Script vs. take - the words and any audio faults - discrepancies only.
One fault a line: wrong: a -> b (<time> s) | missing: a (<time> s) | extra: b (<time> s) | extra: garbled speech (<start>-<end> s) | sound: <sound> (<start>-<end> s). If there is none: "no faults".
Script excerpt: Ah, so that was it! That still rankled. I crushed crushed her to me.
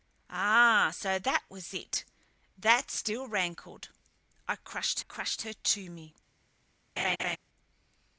sound: laugh (7.0-7.4 s)